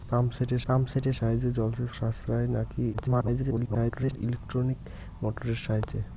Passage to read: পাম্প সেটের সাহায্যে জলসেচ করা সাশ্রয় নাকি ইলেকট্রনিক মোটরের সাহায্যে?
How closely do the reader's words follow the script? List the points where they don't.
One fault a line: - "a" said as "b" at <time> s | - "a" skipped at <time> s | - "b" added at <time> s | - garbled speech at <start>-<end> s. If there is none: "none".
- "পাম্প সেটের" added at 0.7 s
- "করা" skipped at 1.9 s
- garbled speech at 2.9-4.2 s